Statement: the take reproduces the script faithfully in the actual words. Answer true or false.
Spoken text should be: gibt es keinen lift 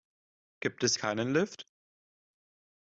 true